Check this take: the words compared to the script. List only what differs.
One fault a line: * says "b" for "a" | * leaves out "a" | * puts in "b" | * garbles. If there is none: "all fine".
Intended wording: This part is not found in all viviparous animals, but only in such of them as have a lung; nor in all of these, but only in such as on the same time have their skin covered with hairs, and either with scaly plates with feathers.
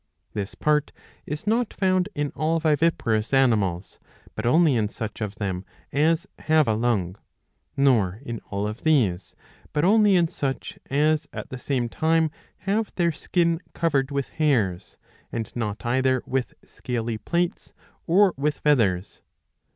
* says "at" for "on"
* puts in "not"
* puts in "or"